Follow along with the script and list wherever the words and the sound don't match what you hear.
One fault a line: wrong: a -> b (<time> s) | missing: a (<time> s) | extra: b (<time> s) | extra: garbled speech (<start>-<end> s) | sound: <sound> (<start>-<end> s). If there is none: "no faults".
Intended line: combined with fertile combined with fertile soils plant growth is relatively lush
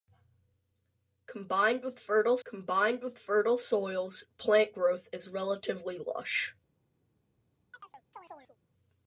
sound: chirp (7.7-8.6 s)